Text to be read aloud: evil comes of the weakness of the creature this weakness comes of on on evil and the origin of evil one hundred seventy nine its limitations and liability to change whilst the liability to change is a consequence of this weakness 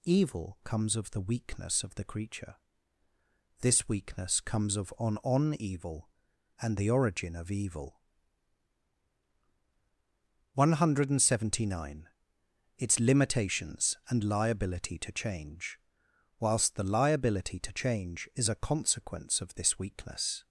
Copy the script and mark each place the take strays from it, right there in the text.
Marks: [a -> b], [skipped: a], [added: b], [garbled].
evil comes of the weakness of the creature this weakness comes of on on evil and the origin of evil one hundred seventy nine its limitations and liability to change whilst the liability to change is a consequence of this weakness